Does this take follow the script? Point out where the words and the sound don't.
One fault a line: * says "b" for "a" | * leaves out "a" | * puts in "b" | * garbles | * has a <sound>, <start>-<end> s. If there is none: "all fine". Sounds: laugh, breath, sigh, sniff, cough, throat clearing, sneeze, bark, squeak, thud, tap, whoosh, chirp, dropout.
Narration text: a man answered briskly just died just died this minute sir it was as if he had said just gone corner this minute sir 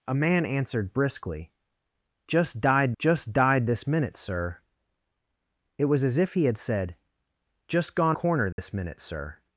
* has a dropout, 8.5-8.6 s